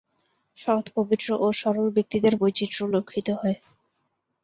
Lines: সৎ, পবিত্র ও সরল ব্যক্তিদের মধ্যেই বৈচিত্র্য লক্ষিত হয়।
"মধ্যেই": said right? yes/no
no